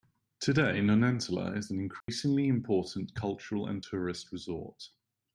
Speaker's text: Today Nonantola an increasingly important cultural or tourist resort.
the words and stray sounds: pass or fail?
fail